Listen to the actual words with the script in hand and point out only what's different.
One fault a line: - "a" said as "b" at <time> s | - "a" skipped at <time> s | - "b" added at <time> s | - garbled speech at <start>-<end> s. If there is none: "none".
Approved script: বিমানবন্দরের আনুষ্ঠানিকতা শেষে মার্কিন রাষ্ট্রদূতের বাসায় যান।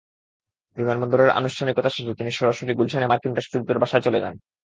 - "তিনি সরাসরি গুলশানে" added at 2.2 s
- "চলে" added at 4.0 s